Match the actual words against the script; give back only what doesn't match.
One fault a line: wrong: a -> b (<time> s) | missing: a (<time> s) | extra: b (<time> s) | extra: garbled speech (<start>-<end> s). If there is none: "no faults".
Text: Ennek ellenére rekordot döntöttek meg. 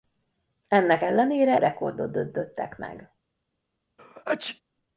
no faults